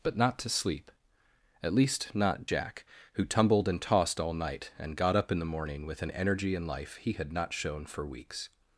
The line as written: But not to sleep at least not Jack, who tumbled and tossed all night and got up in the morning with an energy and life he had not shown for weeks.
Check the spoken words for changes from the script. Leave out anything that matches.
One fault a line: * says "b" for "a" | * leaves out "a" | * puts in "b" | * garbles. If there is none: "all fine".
all fine